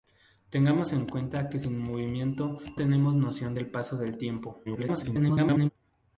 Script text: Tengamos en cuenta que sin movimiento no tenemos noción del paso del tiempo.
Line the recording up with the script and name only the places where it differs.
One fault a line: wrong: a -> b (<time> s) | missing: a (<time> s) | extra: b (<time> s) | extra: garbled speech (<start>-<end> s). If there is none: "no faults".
missing: no (2.6 s)
extra: garbled speech (4.6-5.7 s)